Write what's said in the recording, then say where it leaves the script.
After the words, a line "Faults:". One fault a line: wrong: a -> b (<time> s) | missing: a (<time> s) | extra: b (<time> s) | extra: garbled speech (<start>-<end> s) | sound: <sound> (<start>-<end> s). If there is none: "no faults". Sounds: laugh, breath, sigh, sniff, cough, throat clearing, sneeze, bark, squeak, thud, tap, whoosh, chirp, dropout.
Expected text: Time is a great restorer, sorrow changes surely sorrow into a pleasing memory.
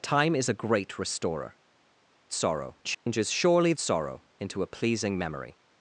Time is a great restorer, sorrow changes surely sorrow into a pleasing memory.
Faults:
sound: dropout (2.9-3.1 s)